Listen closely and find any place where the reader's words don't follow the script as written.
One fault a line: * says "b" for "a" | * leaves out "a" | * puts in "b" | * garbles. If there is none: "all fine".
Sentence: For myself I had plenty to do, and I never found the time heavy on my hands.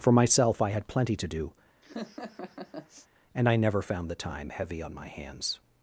all fine